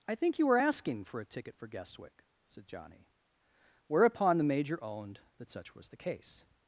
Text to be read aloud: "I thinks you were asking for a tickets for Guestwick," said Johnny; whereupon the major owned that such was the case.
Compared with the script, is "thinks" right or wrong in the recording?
wrong